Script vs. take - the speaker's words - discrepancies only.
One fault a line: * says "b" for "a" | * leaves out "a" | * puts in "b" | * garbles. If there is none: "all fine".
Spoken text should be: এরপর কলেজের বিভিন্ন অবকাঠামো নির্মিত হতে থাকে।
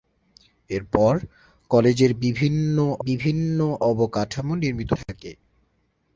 * puts in "বিভিন্ন"
* leaves out "হতে"